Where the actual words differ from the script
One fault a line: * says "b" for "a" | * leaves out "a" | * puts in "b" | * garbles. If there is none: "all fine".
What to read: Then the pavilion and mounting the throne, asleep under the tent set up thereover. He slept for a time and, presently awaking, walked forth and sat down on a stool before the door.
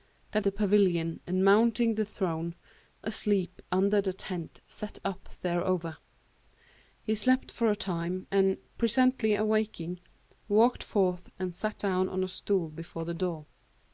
all fine